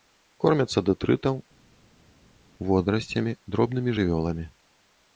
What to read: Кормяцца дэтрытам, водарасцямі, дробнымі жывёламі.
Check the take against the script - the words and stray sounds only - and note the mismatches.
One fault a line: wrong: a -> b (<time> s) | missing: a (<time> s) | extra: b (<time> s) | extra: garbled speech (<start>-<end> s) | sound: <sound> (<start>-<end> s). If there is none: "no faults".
no faults